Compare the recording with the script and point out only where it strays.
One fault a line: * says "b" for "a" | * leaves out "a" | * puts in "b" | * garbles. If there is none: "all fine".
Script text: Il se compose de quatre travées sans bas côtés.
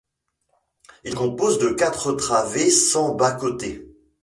* leaves out "se"